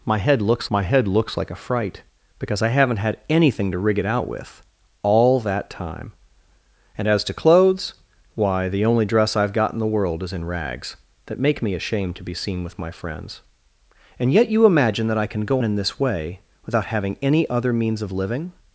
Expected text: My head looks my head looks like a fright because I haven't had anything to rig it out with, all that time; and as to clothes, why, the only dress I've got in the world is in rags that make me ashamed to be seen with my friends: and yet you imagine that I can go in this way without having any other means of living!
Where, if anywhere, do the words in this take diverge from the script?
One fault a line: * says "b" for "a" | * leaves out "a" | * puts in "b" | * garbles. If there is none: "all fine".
all fine